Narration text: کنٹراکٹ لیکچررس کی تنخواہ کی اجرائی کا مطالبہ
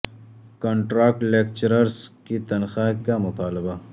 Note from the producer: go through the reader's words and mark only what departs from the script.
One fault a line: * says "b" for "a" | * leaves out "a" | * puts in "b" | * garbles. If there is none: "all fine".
* leaves out "کی اجرائی"